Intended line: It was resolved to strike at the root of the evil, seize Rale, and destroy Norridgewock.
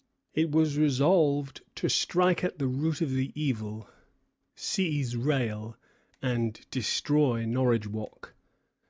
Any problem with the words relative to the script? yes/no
no